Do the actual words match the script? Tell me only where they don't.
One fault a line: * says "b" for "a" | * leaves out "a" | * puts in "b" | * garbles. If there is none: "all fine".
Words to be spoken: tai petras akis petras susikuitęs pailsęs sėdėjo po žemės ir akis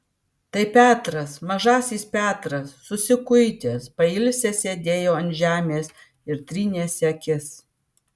* says "mažasis" for "akis"
* says "ant" for "po"
* puts in "trynėsi"